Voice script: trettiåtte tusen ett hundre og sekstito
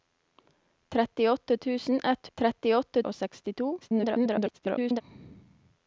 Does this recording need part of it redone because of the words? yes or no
yes